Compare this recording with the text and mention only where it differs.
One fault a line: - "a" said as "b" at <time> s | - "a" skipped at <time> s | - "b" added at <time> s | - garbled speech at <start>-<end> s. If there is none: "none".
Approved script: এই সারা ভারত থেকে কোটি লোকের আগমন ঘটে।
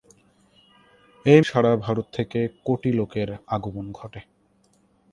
none